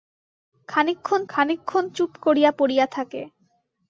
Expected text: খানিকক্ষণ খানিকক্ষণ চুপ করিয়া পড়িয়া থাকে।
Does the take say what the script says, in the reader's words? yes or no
yes